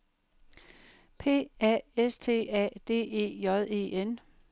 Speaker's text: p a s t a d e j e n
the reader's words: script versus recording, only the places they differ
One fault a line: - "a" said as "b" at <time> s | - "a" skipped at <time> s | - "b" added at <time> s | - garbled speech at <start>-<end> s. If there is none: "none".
none